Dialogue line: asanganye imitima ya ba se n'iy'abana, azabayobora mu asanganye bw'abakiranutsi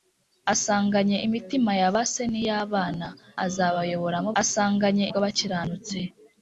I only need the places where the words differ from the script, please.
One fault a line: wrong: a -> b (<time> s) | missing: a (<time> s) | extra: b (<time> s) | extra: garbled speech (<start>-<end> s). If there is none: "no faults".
no faults